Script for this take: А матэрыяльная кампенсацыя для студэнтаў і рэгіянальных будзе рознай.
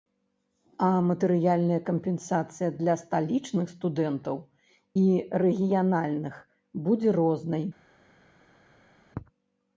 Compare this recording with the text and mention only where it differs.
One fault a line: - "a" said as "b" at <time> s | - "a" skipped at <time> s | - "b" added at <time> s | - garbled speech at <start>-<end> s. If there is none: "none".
- "сталічных" added at 3.0 s